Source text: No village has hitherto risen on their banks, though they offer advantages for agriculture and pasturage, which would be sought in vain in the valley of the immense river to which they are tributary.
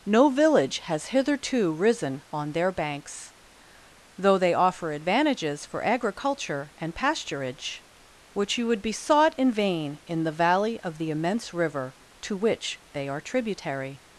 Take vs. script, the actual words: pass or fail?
fail